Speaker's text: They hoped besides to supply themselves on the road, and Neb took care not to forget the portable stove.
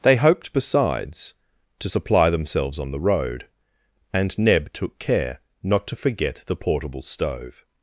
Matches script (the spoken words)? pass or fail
pass